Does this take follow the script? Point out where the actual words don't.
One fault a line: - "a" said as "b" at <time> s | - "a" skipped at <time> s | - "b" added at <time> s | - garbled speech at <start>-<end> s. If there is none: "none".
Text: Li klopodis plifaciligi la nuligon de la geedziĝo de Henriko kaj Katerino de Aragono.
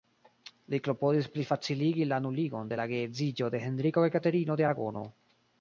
none